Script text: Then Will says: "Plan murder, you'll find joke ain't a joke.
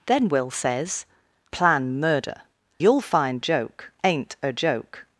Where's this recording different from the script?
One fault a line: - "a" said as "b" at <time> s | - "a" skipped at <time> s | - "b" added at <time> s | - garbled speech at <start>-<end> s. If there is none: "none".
none